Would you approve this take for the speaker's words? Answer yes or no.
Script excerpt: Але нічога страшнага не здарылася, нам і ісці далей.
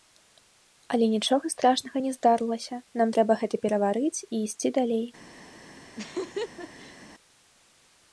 no